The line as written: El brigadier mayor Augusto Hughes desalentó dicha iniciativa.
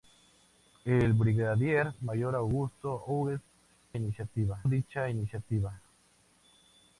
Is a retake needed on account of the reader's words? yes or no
yes